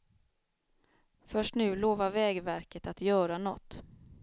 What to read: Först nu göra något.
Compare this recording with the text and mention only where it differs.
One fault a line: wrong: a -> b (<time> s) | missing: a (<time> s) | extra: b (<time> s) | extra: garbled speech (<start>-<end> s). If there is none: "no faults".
extra: lovar vägverket att (1.8 s)